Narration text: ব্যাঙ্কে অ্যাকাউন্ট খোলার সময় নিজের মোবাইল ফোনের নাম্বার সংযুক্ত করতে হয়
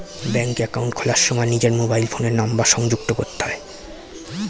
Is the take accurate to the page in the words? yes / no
yes